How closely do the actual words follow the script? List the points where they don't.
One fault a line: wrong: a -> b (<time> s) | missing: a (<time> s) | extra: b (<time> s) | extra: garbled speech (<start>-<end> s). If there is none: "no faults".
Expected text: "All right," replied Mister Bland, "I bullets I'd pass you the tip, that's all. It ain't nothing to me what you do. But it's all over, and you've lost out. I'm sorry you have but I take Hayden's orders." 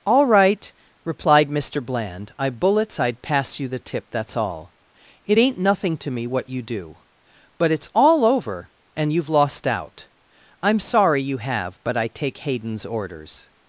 no faults